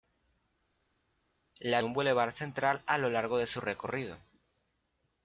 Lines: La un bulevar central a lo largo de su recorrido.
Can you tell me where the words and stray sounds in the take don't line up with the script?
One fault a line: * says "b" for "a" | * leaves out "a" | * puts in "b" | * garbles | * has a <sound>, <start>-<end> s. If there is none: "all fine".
all fine